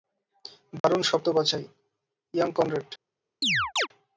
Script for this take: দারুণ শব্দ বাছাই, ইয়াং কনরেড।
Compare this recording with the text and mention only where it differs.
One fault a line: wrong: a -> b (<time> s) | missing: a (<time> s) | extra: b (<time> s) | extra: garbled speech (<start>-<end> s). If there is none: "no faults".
no faults